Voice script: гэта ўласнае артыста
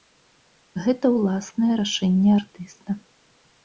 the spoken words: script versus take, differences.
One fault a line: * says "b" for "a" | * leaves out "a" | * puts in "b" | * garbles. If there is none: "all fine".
* puts in "рашэнне"